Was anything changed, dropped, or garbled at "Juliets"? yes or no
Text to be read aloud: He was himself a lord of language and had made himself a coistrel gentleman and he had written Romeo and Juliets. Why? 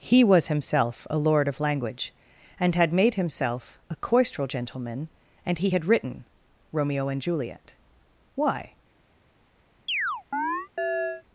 yes